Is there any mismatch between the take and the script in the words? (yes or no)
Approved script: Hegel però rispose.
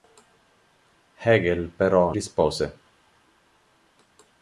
no